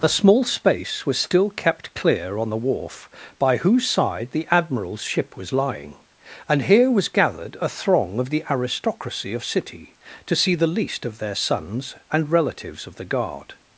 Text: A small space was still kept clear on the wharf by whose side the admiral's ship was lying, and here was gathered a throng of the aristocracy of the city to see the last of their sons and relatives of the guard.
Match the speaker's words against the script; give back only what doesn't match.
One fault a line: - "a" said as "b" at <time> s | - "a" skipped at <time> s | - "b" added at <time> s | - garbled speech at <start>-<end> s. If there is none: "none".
- "the" skipped at 9.4 s
- "last" said as "least" at 10.7 s